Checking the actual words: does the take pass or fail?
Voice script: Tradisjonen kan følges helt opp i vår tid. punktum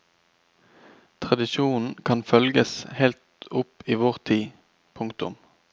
pass